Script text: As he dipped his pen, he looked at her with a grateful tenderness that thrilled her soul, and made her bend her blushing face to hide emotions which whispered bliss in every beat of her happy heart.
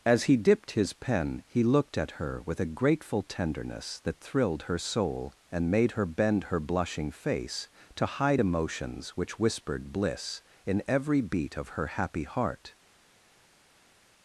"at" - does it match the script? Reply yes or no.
yes